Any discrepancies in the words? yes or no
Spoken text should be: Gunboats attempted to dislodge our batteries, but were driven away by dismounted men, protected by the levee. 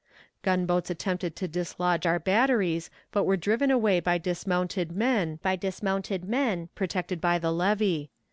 yes